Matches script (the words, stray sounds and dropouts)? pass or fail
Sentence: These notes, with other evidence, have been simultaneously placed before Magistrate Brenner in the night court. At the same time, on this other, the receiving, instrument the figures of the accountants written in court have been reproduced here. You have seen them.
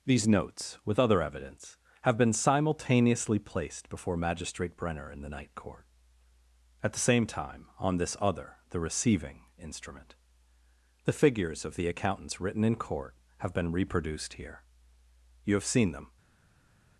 pass